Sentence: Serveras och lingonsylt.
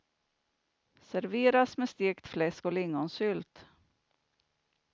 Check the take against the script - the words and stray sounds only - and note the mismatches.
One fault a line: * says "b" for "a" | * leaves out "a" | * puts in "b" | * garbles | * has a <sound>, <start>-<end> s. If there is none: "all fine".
* puts in "med stekt fläsk"